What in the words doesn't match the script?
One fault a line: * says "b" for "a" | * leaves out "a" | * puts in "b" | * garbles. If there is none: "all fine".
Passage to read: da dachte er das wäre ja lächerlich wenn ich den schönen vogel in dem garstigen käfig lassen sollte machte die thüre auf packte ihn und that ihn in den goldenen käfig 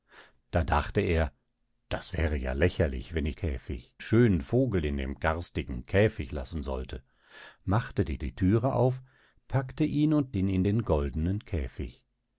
* says "käfig" for "den"
* puts in "die"
* leaves out "that"